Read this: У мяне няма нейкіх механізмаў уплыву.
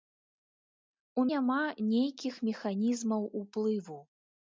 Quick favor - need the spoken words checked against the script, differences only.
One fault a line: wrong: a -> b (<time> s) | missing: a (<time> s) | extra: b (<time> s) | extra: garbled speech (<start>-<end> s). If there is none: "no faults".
missing: мяне (1.2 s)